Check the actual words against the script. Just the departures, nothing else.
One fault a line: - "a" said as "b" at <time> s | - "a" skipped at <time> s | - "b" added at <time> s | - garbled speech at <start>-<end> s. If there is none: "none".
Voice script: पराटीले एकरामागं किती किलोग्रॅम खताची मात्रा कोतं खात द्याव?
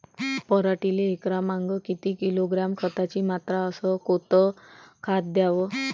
- "अस" added at 3.7 s